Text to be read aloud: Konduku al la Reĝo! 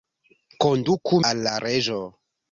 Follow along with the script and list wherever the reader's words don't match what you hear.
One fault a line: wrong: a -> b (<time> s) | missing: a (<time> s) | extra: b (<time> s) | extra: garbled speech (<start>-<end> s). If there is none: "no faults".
no faults